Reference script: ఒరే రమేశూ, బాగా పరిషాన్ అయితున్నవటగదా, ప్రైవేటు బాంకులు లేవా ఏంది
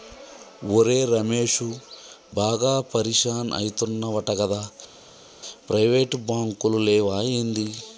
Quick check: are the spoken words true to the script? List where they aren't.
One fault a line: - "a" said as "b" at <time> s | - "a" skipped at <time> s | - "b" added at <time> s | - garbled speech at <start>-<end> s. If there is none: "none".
none